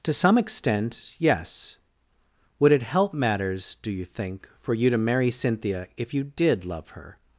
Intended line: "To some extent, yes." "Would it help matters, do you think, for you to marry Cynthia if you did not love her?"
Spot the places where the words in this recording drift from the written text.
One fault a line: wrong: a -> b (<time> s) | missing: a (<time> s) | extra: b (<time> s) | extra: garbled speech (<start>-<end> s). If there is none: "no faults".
missing: not (6.6 s)